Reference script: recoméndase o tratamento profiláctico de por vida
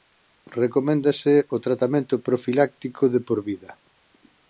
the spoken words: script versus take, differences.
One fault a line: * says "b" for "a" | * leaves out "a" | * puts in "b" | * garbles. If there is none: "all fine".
all fine